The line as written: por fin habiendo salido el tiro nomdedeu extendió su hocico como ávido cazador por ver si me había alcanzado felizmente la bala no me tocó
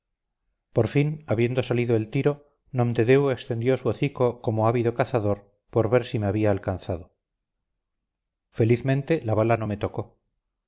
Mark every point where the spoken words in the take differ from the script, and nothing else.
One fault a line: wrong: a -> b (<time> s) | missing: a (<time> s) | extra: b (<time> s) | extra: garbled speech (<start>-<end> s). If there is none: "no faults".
no faults